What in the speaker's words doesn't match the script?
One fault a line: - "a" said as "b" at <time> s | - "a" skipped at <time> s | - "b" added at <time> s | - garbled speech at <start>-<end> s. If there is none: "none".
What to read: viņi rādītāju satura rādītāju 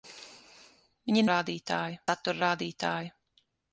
none